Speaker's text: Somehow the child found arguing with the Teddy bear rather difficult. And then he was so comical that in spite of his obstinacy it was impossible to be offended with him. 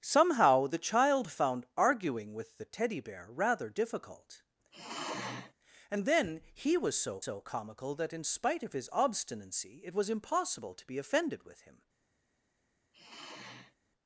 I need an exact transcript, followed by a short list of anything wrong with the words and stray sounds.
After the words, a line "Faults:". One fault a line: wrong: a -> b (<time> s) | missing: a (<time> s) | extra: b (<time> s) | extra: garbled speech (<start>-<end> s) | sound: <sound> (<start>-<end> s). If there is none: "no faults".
Somehow the child found arguing with the Teddy bear rather difficult. And then he was so so comical that in spite of his obstinacy it was impossible to be offended with him.
Faults:
sound: sigh (4.7-5.5 s)
extra: so (7.2 s)
sound: sigh (12.9-13.8 s)